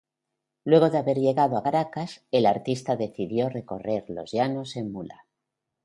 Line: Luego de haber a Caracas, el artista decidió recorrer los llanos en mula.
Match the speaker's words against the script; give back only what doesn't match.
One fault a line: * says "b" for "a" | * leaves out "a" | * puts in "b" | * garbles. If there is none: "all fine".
* puts in "llegado"